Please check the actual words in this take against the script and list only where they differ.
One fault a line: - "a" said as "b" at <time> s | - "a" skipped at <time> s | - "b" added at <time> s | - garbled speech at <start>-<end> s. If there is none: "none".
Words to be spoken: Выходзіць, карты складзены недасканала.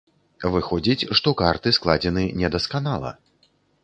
- "што" added at 1.2 s